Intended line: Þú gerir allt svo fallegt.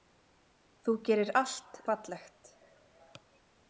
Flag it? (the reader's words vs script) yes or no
yes